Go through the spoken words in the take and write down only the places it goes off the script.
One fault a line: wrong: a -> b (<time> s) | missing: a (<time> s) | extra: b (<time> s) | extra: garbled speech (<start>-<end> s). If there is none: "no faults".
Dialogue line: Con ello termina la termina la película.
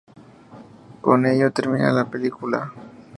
missing: termina la (2.0 s)